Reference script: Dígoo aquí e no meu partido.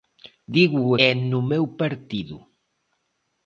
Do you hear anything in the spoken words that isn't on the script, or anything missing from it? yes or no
yes